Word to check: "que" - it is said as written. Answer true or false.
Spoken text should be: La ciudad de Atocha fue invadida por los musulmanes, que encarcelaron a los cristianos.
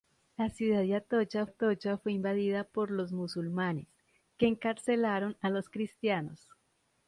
true